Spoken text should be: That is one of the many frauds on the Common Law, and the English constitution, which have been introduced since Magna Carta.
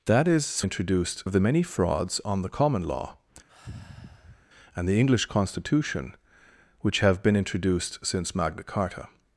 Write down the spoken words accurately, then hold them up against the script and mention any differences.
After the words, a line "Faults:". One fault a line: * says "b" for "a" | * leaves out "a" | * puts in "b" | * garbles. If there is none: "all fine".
That is introduced of the many frauds on the Common Law, and the English constitution, which have been introduced since Magna Carta.
Faults:
* says "introduced" for "one"